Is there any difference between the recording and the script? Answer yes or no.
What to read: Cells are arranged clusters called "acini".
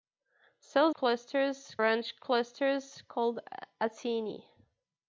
yes